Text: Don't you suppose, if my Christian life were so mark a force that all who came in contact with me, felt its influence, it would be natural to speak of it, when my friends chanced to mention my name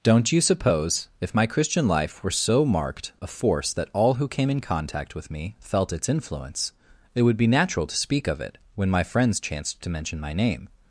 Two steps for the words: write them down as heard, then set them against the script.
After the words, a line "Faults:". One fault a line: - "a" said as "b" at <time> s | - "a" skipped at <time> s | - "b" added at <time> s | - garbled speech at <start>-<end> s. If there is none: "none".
Don't you suppose, if my Christian life were so marked a force that all who came in contact with me, felt its influence, it would be natural to speak of it, when my friends chanced to mention my name
Faults:
- "mark" said as "marked" at 2.6 s